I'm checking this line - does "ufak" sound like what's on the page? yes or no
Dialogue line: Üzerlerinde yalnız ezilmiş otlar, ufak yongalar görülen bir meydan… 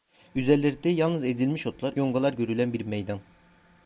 no